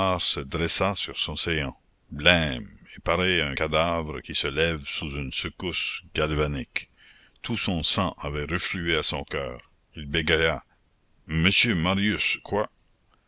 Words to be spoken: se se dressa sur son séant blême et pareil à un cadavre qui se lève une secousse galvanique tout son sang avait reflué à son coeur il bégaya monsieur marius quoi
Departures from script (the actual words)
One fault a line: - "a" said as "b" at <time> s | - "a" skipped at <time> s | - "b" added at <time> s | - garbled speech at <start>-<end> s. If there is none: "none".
- "se" skipped at 0.4 s
- "sous" added at 4.8 s